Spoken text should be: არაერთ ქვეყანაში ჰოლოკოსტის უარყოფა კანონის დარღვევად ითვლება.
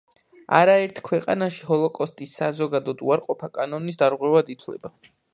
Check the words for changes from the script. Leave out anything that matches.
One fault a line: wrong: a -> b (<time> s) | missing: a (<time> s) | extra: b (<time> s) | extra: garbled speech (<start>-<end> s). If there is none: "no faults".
extra: საზოგადოდ (2.4 s)